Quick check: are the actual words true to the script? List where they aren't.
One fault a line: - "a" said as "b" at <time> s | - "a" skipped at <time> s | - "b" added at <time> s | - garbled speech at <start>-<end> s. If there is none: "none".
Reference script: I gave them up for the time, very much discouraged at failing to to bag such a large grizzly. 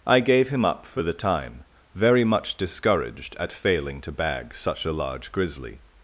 - "them" said as "him" at 0.5 s
- "to" skipped at 4.1 s